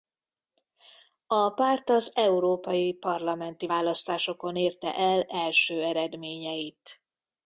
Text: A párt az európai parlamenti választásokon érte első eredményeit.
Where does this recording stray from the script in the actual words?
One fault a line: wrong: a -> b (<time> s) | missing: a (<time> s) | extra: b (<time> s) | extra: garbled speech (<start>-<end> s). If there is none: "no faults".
extra: el (4.9 s)